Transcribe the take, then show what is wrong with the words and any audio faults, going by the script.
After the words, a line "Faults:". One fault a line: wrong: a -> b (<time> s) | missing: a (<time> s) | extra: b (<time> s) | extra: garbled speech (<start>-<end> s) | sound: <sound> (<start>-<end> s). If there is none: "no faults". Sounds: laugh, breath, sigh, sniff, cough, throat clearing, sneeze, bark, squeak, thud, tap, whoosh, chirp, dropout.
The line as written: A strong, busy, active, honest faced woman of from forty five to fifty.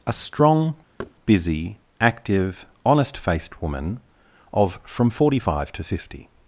A strong, busy, active, honest faced woman of from forty five to fifty.
Faults:
sound: thud (1.0-1.1 s)